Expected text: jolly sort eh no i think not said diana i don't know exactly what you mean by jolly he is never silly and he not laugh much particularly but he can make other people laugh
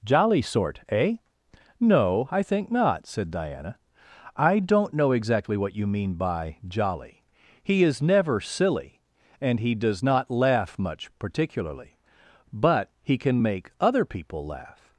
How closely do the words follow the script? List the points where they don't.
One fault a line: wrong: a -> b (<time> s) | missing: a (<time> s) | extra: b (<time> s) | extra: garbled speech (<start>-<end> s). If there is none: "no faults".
extra: does (9.8 s)